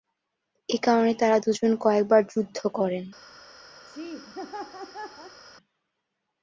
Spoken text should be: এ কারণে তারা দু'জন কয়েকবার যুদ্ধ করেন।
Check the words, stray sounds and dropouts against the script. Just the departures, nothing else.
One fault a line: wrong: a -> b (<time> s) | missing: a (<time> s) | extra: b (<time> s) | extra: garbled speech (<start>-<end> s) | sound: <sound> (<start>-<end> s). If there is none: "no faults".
sound: laugh (3.9-5.4 s)